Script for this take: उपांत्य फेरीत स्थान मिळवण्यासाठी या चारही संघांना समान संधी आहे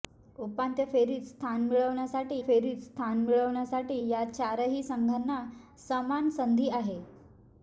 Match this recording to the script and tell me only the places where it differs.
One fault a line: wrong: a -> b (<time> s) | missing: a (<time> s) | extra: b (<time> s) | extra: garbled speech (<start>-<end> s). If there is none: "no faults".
extra: फेरीत स्थान मिळवण्यासाठी (2.4 s)